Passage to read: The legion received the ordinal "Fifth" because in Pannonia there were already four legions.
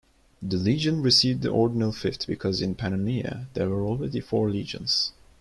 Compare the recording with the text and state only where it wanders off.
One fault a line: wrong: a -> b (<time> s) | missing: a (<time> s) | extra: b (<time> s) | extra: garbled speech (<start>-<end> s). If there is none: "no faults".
no faults